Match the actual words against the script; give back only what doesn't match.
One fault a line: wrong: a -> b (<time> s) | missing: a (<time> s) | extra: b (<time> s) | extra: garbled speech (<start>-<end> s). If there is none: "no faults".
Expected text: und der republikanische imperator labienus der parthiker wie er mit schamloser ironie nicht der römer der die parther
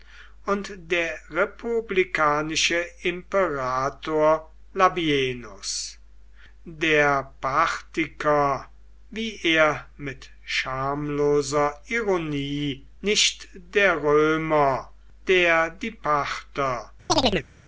no faults